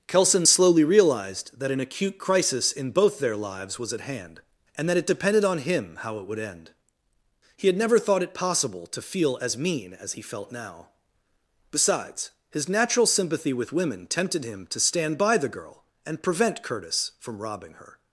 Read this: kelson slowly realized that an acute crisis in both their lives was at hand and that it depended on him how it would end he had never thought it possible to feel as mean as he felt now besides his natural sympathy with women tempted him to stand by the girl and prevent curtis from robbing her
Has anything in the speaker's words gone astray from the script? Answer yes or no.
no